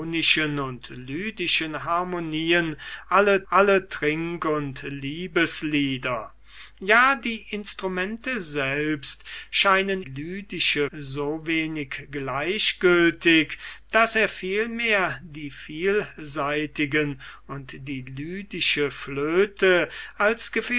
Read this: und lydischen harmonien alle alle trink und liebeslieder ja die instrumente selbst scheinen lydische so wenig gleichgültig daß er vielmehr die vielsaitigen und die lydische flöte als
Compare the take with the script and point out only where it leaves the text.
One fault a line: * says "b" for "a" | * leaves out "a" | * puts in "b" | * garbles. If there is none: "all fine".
all fine